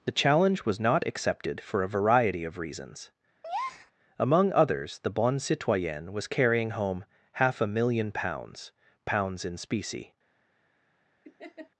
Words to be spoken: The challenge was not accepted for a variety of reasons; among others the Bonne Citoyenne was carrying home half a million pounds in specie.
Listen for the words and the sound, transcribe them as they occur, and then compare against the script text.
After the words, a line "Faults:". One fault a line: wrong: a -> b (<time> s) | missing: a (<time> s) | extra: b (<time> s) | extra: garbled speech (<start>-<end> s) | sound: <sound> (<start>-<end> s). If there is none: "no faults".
The challenge was not accepted for a variety of reasons; among others the Bonne Citoyenne was carrying home half a million pounds pounds in specie.
Faults:
sound: breath (3.4-3.9 s)
extra: pounds (9.0 s)
sound: laugh (11.2-11.7 s)